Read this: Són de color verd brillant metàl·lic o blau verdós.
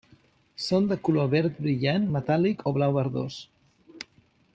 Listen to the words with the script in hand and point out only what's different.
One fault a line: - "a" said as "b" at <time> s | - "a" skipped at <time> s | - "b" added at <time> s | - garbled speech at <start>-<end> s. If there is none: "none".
none